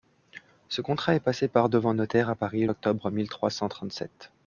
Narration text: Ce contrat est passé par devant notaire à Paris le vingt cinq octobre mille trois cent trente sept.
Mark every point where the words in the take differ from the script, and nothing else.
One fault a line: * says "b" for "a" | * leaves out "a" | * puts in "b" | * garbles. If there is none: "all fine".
* leaves out "le vingt cinq"